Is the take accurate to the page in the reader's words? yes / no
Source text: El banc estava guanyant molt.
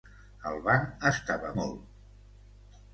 no